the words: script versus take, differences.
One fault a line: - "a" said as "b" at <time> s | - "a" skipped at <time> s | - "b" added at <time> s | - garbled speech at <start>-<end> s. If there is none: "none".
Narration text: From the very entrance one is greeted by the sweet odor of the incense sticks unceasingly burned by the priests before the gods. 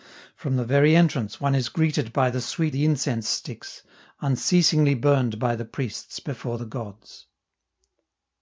- "odor of" skipped at 2.8 s